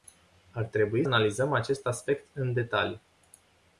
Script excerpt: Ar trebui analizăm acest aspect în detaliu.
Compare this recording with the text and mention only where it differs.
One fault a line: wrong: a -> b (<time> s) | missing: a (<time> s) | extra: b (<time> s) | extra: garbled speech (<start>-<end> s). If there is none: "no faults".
no faults